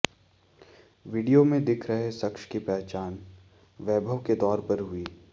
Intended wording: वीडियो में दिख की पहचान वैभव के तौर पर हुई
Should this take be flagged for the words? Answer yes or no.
yes